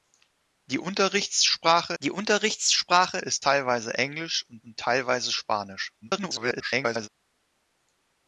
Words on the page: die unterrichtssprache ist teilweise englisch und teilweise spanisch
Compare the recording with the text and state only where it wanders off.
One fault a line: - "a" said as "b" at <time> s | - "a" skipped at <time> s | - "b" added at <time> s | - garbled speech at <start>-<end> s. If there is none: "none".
- "die unterrichtssprache" added at 2.0 s
- "und" added at 4.6 s
- garbled speech at 6.0-7.1 s